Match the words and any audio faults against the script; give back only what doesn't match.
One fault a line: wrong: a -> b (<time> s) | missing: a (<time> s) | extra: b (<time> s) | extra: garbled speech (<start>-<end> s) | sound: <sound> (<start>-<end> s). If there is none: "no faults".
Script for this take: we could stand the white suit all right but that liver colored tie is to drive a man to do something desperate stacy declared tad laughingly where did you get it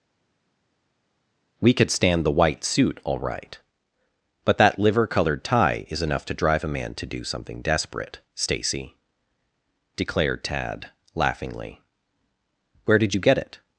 extra: enough (6.0 s)